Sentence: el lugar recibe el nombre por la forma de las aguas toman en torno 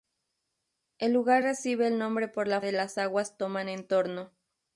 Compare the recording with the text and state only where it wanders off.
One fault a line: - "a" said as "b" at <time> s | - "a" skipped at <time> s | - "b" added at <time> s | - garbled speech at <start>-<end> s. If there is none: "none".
- "forma" skipped at 2.6 s